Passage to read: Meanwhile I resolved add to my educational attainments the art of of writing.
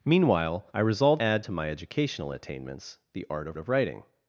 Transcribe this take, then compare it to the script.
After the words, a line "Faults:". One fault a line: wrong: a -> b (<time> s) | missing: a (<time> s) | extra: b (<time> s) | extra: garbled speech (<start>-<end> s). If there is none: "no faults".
Meanwhile I resolved add to my educational attainments the art of of writing.
Faults:
no faults